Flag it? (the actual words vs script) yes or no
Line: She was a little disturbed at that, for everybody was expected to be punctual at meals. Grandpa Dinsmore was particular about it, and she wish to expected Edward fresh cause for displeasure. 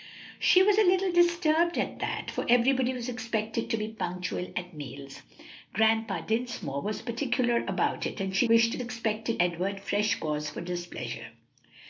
no